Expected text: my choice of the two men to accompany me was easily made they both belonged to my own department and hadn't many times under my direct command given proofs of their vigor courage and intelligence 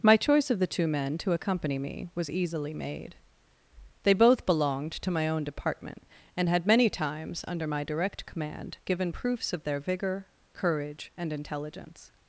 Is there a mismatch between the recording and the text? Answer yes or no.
yes